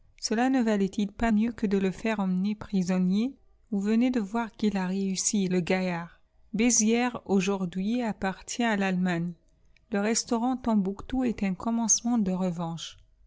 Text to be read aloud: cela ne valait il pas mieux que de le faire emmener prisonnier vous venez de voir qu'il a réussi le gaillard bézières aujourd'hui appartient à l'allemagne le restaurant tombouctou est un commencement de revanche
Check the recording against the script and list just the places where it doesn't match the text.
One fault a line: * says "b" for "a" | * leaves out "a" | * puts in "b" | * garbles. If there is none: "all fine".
all fine